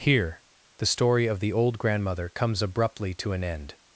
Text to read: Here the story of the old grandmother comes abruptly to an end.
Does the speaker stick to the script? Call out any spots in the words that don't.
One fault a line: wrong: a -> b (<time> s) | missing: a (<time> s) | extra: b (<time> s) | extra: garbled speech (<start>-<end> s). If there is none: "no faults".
no faults